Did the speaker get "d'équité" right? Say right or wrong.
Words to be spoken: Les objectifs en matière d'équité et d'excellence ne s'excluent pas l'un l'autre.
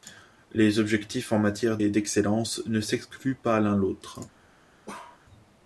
wrong